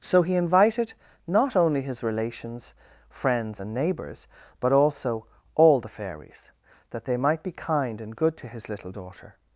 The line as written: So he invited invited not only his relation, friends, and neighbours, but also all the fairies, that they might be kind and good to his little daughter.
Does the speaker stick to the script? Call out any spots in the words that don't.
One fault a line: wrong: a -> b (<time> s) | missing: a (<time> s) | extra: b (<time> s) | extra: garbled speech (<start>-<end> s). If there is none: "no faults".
missing: invited (0.9 s)
wrong: relation -> relations (2.0 s)